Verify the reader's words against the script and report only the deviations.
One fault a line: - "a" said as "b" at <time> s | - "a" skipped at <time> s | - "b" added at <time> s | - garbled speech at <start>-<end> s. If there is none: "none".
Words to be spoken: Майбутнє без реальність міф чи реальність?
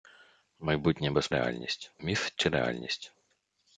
none